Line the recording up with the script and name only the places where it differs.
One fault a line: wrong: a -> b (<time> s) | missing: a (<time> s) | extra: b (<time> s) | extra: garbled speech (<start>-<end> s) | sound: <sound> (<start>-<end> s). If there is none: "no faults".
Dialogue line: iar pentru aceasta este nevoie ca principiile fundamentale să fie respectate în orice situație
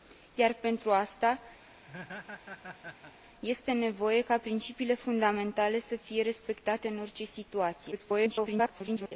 sound: laugh (1.6-3.1 s)
extra: garbled speech (7.9-9.1 s)